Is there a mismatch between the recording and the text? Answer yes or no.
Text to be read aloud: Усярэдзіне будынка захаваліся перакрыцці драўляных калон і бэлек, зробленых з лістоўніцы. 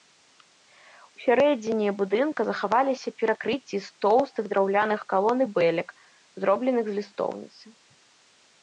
yes